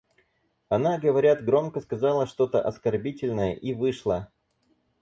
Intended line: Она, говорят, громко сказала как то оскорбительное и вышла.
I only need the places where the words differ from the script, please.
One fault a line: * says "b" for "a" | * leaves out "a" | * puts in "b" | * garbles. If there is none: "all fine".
* says "что" for "как"